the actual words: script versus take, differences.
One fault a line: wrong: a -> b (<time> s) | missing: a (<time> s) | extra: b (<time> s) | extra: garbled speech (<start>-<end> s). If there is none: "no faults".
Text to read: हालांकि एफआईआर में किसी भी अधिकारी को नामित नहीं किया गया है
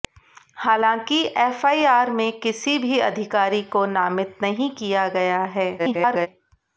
extra: garbled speech (5.8-6.3 s)